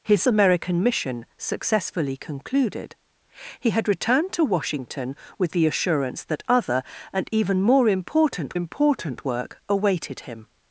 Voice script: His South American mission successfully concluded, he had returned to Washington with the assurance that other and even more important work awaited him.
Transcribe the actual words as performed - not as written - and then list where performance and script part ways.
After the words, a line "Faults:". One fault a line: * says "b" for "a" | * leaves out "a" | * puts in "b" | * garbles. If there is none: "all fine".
His American mission successfully concluded, he had returned to Washington with the assurance that other and even more important important work awaited him.
Faults:
* leaves out "South"
* puts in "important"